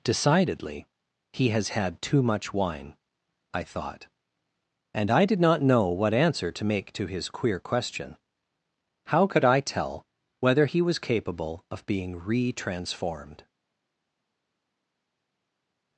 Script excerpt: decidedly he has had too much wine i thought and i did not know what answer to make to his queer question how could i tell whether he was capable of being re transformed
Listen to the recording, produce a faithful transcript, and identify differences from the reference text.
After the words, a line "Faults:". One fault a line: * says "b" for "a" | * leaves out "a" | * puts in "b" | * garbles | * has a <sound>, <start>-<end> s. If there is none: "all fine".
decidedly he has had too much wine i thought and i did not know what answer to make to his queer question how could i tell whether he was capable of being re transformed
Faults:
all fine